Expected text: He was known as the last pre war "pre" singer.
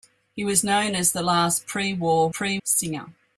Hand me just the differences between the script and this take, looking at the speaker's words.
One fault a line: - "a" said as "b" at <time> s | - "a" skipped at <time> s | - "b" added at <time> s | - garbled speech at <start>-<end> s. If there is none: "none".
none